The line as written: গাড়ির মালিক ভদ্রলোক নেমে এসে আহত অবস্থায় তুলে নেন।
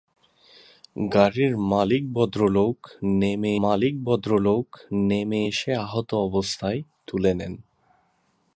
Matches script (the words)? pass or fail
fail